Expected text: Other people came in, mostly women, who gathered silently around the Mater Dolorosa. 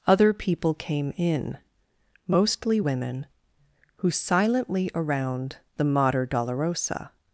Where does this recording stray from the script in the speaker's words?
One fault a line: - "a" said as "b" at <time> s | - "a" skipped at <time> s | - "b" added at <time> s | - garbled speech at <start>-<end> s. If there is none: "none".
- "gathered" skipped at 4.1 s